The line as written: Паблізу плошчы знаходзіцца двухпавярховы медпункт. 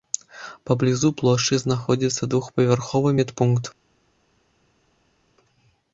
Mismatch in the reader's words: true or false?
false